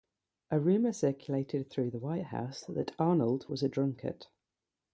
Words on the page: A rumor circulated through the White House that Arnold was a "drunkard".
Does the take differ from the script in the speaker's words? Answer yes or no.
no